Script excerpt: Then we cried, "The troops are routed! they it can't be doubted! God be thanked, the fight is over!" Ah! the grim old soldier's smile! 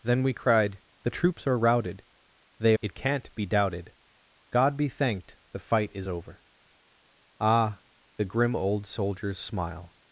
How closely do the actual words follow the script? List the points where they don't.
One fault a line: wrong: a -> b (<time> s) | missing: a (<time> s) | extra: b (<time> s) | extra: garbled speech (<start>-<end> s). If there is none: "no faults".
no faults